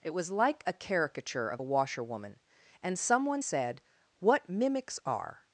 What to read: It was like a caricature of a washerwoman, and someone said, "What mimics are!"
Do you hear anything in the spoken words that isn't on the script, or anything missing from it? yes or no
no